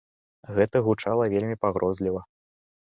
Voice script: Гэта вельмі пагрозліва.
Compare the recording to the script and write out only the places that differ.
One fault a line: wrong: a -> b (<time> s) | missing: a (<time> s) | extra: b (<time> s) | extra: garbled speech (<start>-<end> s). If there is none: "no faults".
extra: гучала (0.9 s)